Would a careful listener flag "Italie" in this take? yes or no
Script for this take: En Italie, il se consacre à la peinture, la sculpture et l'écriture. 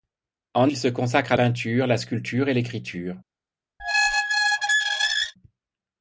yes